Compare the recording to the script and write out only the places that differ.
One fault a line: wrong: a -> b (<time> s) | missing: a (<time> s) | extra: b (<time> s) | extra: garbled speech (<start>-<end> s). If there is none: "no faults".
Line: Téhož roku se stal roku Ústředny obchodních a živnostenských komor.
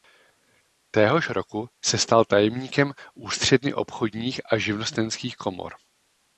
wrong: roku -> tajemníkem (2.2 s)